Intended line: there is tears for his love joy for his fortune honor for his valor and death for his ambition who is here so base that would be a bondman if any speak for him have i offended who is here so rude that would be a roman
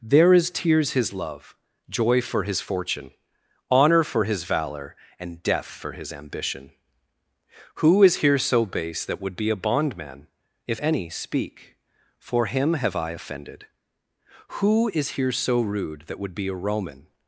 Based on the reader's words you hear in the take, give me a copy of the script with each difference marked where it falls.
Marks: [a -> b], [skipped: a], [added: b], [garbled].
there is tears [skipped: for] his love joy for his fortune honor for his valor and death for his ambition who is here so base that would be a bondman if any speak for him have i offended who is here so rude that would be a roman